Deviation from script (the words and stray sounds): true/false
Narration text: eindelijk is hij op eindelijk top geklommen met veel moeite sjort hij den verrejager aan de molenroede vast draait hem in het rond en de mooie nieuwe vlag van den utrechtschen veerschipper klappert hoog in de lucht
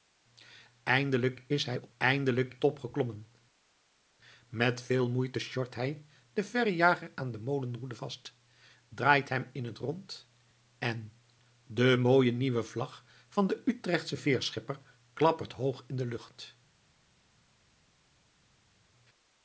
false